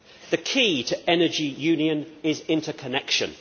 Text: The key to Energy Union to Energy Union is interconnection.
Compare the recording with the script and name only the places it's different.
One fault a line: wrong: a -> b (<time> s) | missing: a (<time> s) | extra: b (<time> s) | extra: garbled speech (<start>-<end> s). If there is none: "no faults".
missing: to Energy Union (2.1 s)